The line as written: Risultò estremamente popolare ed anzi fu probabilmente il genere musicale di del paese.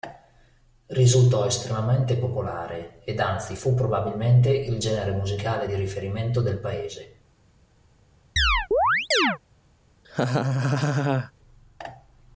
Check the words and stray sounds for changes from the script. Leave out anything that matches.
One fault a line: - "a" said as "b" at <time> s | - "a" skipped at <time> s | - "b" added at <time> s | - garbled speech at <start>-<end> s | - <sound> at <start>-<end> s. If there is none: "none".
- "riferimento" added at 5.8 s
- chirp at 8.4-9.4 s
- laugh at 10.0-11.3 s